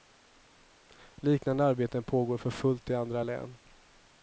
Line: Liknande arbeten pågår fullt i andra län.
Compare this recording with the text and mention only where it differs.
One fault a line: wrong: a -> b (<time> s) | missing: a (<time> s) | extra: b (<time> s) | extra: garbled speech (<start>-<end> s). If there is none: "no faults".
extra: för (2.4 s)